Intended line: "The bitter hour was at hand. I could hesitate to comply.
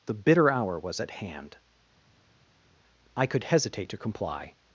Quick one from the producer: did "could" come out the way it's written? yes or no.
yes